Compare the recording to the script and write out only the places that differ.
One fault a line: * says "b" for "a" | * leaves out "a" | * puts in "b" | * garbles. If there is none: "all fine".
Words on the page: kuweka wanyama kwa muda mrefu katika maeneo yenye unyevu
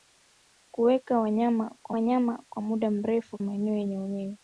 * puts in "wanyama kwa"
* leaves out "katika"